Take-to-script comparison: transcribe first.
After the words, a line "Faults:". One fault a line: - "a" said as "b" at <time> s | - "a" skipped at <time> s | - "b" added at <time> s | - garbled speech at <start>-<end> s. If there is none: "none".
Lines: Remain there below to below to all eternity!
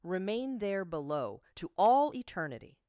Remain there below to all eternity!
Faults:
- "below to" skipped at 1.7 s